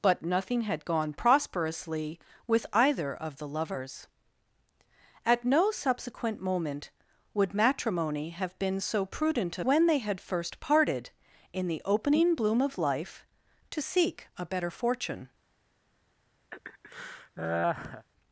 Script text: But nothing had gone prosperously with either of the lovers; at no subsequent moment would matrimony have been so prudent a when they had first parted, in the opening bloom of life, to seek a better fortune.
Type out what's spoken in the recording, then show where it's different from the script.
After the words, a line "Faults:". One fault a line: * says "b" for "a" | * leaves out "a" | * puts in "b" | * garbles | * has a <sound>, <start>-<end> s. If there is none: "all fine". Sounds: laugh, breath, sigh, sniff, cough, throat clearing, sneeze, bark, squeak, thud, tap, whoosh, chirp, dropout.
But nothing had gone prosperously with either of the lovers; at no subsequent moment would matrimony have been so prudent a when they had first parted, in the opening bloom of life, to seek a better fortune.
Faults:
* has a laugh, 16.5-18.1 s